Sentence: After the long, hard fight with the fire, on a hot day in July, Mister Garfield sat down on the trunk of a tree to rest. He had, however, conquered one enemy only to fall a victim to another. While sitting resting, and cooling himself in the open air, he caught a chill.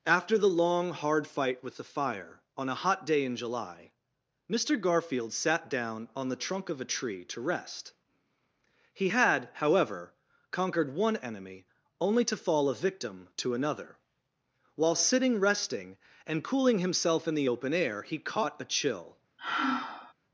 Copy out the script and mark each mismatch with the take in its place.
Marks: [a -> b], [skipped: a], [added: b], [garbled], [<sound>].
After the long, hard fight with the fire, on a hot day in July, Mister Garfield sat down on the trunk of a tree to rest. He had, however, conquered one enemy only to fall a victim to another. While sitting resting, and cooling himself in the open air, he caught a chill. [sigh]